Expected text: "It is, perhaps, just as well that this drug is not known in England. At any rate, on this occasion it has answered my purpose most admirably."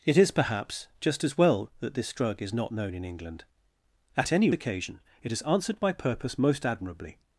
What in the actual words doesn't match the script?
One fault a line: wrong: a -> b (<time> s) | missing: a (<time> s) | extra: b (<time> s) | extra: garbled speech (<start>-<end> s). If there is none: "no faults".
missing: rate on this (4.5 s)